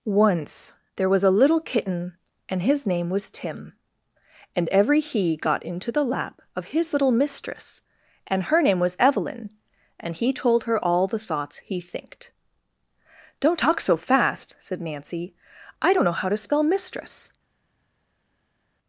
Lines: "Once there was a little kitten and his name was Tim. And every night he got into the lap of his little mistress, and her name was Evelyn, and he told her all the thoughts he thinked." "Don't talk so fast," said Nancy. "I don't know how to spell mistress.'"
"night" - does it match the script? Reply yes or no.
no